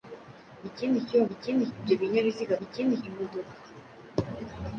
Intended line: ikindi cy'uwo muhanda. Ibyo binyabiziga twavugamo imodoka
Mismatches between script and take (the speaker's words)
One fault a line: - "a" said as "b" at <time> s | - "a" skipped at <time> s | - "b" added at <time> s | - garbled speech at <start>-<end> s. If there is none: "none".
- "muhanda" said as "ikindi" at 1.3 s
- "twavugamo" said as "ikindi" at 2.6 s